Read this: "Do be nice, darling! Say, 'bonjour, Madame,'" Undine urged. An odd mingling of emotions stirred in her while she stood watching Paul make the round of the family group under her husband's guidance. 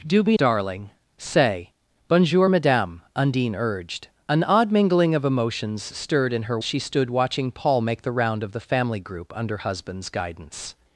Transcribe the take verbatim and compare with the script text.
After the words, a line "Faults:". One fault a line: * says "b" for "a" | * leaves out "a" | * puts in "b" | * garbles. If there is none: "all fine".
"Do be darling! Say, 'bonjour, Madame,'" Undine urged. An odd mingling of emotions stirred in her she stood watching Paul make the round of the family group under husband's guidance.
Faults:
* leaves out "nice"
* leaves out "while"
* leaves out "her"